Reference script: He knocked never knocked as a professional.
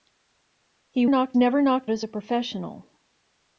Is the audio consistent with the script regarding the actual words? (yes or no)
yes